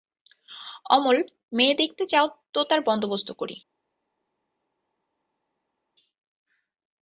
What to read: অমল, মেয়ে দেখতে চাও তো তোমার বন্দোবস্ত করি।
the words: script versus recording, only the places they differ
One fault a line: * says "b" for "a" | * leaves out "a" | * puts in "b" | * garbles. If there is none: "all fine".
* says "তার" for "তোমার"